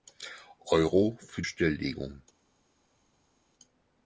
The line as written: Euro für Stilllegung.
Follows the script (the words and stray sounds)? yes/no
yes